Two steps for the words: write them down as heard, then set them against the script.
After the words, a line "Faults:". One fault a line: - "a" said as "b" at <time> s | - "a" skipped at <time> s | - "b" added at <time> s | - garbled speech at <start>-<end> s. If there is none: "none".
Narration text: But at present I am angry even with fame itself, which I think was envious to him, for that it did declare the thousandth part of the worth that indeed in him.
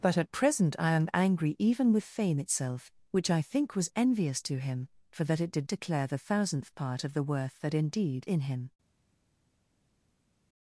But at present I am angry even with fame itself, which I think was envious to him, for that it did declare the thousandth part of the worth that indeed in him.
Faults:
none